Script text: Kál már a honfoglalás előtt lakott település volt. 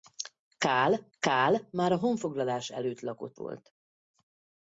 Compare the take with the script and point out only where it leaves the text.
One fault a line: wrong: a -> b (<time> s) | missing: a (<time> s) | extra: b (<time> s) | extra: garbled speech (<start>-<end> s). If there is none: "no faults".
extra: kál (1.2 s)
missing: település (3.4 s)